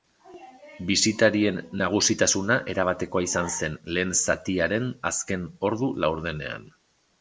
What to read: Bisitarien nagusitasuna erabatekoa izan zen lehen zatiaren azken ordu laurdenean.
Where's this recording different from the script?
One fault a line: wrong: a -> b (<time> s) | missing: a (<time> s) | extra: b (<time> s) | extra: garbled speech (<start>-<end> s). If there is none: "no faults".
no faults